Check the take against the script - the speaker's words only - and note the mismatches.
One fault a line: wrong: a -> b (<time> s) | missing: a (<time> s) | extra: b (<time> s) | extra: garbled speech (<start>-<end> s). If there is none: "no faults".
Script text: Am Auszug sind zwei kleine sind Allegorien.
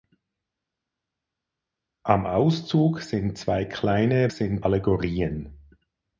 no faults